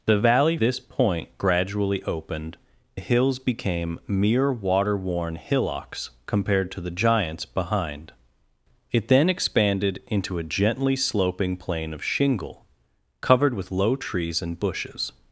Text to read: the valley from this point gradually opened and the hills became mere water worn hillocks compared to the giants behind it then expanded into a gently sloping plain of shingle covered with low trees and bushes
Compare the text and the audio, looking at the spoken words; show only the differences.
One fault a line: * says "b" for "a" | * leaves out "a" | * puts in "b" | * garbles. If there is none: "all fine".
* leaves out "from"
* leaves out "and"